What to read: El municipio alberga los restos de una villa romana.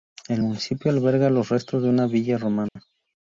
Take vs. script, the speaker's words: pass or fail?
pass